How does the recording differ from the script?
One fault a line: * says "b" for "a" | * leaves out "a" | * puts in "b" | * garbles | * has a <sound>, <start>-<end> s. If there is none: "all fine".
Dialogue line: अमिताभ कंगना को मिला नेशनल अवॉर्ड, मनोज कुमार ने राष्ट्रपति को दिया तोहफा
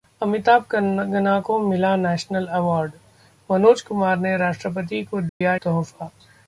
* has a dropout, 5.3-5.4 s